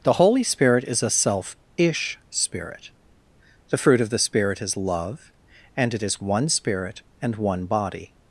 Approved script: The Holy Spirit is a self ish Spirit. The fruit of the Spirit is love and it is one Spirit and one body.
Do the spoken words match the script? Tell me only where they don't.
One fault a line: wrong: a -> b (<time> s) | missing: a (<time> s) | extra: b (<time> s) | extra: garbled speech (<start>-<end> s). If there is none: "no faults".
no faults